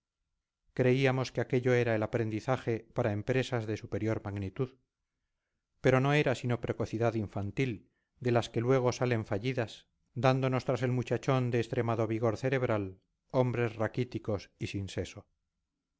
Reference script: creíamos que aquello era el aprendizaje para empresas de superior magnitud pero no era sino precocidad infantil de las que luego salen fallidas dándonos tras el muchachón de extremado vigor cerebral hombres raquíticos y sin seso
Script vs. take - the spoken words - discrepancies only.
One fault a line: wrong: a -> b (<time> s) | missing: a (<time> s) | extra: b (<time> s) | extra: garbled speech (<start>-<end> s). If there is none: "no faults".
no faults